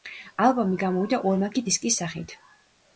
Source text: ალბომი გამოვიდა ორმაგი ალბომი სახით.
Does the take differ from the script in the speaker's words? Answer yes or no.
yes